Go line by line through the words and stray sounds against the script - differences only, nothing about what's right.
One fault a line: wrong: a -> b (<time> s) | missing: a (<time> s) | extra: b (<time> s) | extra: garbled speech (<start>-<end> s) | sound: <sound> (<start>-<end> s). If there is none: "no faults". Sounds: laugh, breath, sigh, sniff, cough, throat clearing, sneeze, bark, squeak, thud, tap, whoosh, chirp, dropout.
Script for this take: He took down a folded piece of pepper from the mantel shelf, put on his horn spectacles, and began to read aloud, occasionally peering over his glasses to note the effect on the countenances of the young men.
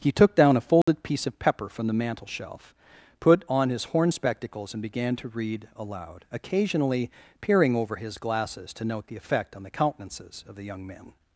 sound: dropout (0.8-0.9 s)